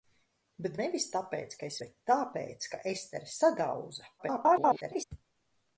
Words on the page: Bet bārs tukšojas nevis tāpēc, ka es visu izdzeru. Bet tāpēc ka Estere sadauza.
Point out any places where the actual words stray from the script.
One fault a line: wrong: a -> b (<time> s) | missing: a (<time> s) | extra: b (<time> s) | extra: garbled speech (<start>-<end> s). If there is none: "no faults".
missing: bārs tukšojas (0.8 s)
missing: visu izdzeru (1.8 s)
extra: garbled speech (4.2-5.0 s)